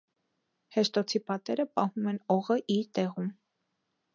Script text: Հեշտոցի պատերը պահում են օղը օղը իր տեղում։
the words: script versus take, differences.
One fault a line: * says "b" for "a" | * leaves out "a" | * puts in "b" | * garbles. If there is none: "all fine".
* leaves out "օղը"